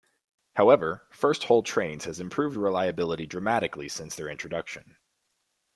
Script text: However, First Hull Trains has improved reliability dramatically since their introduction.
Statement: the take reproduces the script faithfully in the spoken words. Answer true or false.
true